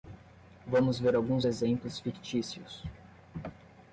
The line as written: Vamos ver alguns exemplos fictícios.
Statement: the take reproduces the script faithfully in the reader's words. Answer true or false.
true